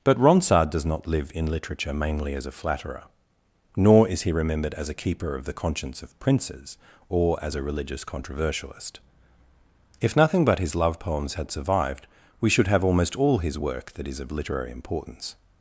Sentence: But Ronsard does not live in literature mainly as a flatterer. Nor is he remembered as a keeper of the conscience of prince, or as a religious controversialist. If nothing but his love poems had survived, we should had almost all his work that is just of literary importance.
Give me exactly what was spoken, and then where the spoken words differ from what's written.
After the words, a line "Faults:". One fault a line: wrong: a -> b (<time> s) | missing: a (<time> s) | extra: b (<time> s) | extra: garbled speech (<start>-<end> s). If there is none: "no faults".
But Ronsard does not live in literature mainly as a flatterer. Nor is he remembered as a keeper of the conscience of princes, or as a religious controversialist. If nothing but his love poems had survived, we should have almost all his work that is of literary importance.
Faults:
wrong: prince -> princes (6.2 s)
wrong: had -> have (12.7 s)
missing: just (14.2 s)